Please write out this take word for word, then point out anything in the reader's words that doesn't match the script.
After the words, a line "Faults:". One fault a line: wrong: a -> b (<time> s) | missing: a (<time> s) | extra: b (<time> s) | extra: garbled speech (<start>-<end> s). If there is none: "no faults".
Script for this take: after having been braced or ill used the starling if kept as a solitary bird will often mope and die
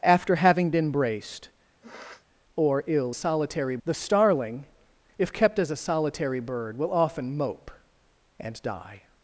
after having been braced or ill solitary the starling if kept as a solitary bird will often mope and die
Faults:
wrong: used -> solitary (3.1 s)